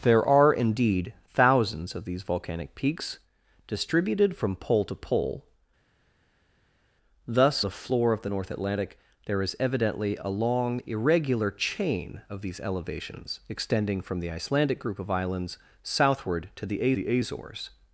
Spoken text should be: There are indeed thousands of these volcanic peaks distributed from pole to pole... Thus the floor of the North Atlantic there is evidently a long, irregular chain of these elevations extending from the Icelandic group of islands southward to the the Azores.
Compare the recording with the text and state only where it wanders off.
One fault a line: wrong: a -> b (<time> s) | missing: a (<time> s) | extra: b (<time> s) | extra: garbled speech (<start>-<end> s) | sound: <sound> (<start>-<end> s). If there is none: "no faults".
no faults